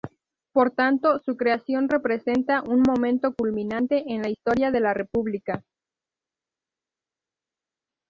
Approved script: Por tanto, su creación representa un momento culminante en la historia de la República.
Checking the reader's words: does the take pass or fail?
pass